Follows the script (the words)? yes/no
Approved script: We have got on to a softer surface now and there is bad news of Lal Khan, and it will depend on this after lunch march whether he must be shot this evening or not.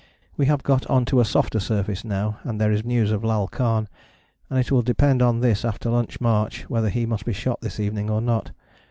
no